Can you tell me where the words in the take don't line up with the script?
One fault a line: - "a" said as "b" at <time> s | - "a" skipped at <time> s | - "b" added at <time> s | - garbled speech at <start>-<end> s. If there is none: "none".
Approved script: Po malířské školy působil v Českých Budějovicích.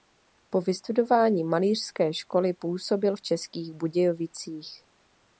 - "vystudování" added at 0.6 s